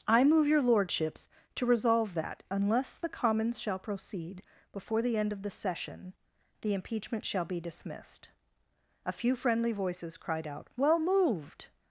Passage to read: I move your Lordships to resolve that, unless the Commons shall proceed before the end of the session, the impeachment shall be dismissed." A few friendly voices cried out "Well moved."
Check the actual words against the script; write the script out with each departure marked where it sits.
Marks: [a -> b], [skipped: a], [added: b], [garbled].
I move your Lordships to resolve that, unless the Commons shall proceed before the end of the session, the impeachment shall be dismissed." A few friendly voices cried out "Well moved."